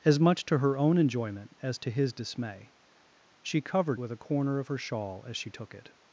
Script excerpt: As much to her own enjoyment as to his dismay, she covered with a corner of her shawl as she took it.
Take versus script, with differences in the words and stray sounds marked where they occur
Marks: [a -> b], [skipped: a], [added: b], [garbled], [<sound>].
As much to her own enjoyment as to his dismay, she covered with a corner of her shawl as she took it.